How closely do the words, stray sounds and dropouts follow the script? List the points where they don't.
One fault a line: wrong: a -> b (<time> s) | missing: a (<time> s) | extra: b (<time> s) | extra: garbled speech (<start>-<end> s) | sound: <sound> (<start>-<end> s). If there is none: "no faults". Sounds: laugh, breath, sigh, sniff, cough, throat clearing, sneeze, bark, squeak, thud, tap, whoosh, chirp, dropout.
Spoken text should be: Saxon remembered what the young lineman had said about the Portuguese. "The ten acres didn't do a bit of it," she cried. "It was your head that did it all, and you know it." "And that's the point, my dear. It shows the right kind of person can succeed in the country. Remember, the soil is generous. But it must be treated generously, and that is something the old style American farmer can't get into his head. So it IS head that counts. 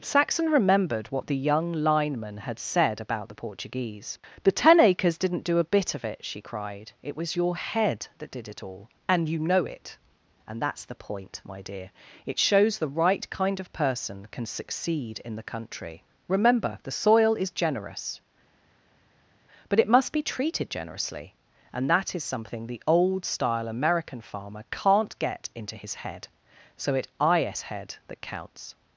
no faults